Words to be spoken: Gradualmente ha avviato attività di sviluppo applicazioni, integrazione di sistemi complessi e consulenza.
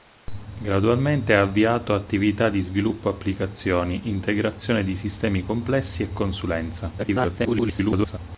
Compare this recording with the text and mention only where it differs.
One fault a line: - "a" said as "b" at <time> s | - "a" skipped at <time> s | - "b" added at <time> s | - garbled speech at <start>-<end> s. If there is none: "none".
- garbled speech at 7.0-8.2 s